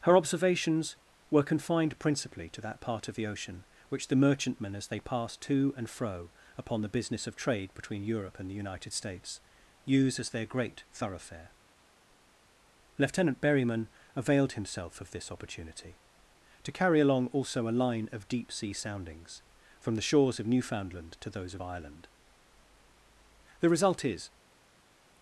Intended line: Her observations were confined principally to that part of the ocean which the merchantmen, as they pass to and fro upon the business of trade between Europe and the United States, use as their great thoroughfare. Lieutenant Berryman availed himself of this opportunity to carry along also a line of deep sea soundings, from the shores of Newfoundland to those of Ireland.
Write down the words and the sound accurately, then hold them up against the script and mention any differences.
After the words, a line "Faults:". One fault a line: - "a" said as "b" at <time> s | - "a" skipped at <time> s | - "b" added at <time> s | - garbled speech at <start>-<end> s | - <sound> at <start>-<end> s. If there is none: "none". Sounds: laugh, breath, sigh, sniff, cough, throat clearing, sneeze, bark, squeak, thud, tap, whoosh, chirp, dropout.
Her observations were confined principally to that part of the ocean which the merchantmen, as they pass to and fro upon the business of trade between Europe and the United States, use as their great thoroughfare. Lieutenant Berryman availed himself of this opportunity to carry along also a line of deep sea soundings, from the shores of Newfoundland to those of Ireland. The result is
Faults:
- "The result is" added at 23.6 s